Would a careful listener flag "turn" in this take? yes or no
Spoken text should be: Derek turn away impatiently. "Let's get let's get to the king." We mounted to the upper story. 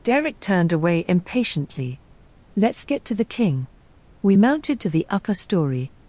yes